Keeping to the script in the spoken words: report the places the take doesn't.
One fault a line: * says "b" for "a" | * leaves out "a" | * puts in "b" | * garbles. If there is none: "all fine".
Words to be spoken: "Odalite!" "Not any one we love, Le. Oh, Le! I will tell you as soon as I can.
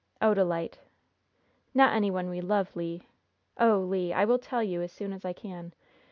all fine